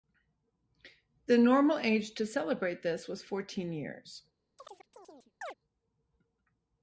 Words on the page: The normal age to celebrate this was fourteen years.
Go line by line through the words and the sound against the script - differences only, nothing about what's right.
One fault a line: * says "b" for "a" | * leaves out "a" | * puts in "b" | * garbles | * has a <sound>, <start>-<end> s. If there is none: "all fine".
* has a chirp, 4.6-5.5 s